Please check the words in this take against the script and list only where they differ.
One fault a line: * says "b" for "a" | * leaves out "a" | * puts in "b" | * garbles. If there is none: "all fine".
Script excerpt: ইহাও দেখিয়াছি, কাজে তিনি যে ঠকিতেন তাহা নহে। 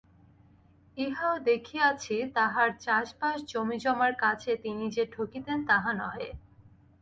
* puts in "তাঁহার চাষবাস জমিজমার"